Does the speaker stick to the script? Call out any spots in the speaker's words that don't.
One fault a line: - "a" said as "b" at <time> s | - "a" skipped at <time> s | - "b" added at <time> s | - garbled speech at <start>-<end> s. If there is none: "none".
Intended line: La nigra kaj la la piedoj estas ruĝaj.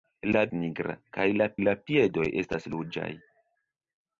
none